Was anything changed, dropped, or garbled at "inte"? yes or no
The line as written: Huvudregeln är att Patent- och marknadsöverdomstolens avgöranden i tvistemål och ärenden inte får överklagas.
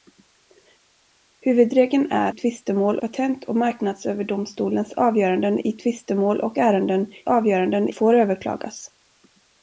yes